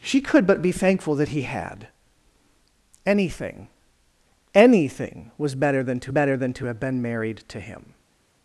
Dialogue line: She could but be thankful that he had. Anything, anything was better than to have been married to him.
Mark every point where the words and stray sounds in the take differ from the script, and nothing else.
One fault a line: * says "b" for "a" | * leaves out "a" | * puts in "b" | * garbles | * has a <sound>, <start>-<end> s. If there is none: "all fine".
* puts in "better than to"